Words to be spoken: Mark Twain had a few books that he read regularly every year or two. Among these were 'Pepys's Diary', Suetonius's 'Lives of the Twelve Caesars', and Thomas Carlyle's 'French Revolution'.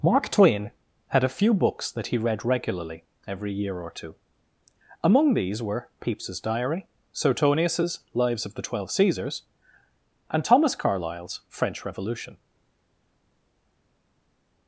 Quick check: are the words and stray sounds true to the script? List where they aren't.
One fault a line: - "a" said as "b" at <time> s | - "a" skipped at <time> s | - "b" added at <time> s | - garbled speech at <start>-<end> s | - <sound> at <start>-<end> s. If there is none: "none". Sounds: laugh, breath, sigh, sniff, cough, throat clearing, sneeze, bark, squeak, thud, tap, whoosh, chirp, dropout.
none